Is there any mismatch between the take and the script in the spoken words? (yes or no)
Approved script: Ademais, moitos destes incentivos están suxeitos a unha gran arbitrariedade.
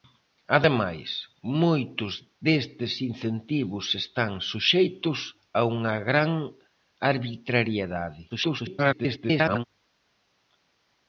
yes